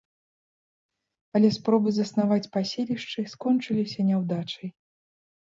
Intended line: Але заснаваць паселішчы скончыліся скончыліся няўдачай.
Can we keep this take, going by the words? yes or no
no